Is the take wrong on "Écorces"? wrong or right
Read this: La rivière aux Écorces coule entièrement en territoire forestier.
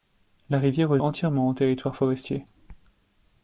wrong